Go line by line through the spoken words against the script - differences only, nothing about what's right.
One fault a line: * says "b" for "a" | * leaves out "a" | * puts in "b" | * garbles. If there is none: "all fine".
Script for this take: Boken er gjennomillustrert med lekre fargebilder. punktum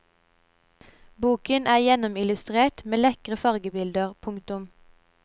all fine